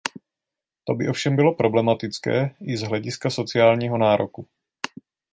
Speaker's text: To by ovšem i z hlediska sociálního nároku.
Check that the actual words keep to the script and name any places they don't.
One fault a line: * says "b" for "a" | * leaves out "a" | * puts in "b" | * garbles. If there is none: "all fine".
* puts in "bylo problematické"